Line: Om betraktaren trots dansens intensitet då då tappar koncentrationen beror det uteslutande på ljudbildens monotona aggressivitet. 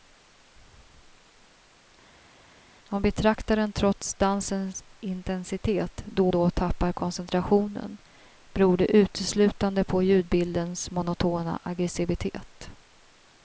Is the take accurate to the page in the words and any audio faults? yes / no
yes